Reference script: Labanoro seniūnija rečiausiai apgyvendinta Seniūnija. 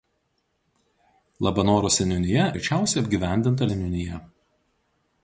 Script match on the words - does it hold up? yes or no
yes